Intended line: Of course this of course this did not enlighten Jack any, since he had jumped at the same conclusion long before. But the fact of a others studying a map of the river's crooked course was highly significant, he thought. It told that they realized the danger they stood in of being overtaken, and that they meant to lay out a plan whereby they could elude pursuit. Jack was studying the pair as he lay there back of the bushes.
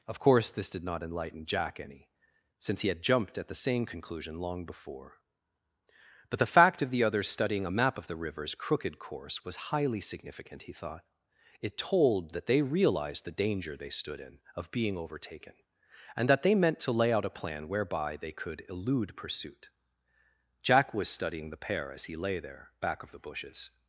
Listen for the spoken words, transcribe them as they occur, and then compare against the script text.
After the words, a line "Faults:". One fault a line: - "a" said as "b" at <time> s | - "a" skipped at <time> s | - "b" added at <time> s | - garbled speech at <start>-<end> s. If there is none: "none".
Of course this did not enlighten Jack any, since he had jumped at the same conclusion long before. But the fact of the others studying a map of the river's crooked course was highly significant, he thought. It told that they realized the danger they stood in of being overtaken, and that they meant to lay out a plan whereby they could elude pursuit. Jack was studying the pair as he lay there back of the bushes.
Faults:
- "of course this" skipped at 0.7 s
- "a" said as "the" at 6.9 s